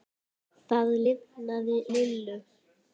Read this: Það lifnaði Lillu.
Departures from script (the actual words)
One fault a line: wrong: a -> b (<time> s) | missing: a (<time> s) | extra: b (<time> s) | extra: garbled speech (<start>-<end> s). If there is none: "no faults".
no faults